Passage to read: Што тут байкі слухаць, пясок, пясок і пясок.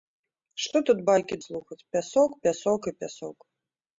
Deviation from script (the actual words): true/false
false